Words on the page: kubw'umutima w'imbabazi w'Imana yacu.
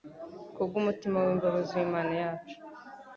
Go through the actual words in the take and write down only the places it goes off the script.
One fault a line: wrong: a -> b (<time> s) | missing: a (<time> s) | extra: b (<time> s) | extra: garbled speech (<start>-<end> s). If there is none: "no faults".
no faults